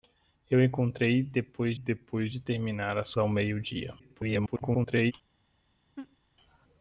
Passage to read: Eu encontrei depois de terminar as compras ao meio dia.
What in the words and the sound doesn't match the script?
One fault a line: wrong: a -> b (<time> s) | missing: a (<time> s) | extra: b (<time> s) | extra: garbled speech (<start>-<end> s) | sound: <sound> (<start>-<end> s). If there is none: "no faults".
extra: depois (1.7 s)
missing: compras (3.1 s)
extra: garbled speech (4.0-5.1 s)
sound: laugh (6.0-6.2 s)